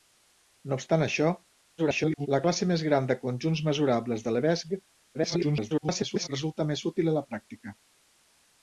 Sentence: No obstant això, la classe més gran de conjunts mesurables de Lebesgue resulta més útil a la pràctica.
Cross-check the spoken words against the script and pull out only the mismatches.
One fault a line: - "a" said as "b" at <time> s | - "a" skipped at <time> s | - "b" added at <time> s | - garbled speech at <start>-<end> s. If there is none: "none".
- garbled speech at 1.8-2.3 s
- garbled speech at 5.1-6.3 s